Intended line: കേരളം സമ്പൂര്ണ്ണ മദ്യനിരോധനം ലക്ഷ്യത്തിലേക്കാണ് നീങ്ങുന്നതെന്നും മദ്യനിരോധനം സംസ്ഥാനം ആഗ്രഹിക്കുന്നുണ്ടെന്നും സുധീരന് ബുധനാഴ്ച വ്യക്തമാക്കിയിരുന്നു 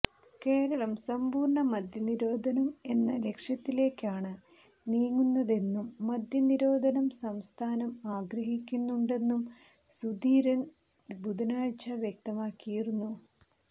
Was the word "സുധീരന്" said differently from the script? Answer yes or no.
no